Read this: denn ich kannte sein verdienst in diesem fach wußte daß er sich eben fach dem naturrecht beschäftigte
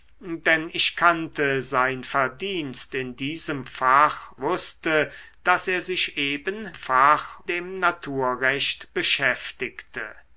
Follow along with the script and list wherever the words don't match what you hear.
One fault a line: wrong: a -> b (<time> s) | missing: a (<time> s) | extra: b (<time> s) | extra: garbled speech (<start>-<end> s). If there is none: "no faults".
no faults